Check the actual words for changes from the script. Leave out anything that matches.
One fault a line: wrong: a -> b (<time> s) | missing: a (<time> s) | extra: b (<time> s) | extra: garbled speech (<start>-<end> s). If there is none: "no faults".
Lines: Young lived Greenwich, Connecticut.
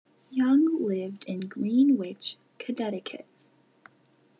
extra: in (1.3 s)